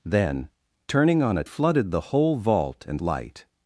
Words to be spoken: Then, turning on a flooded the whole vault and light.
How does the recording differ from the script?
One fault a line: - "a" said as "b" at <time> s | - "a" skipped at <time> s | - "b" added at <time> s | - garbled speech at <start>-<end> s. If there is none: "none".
none